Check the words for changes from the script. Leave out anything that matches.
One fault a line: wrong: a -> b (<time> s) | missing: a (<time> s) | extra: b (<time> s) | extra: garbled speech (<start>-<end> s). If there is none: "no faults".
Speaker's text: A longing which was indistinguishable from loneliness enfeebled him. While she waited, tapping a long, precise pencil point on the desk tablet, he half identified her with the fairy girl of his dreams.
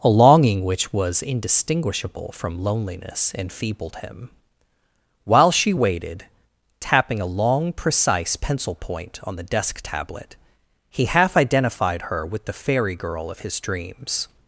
no faults